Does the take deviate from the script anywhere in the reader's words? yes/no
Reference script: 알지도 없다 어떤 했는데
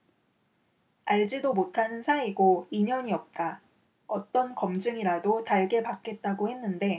yes